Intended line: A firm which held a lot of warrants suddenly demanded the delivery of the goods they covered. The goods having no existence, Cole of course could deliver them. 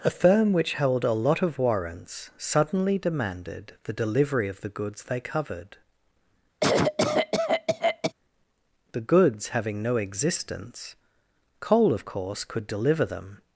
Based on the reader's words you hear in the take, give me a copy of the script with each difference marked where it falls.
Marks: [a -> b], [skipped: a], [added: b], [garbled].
A firm which held a lot of warrants suddenly demanded the delivery of the goods they covered. The goods having no existence, Cole of course could deliver them.